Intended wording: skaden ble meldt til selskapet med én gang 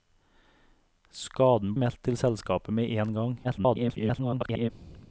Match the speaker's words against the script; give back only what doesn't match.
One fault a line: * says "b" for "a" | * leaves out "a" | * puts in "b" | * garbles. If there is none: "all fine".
* leaves out "ble"
* garbles